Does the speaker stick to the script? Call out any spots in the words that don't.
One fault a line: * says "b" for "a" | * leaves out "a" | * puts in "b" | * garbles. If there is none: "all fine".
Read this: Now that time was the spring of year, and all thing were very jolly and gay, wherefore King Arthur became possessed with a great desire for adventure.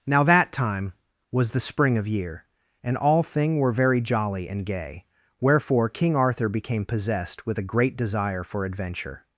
all fine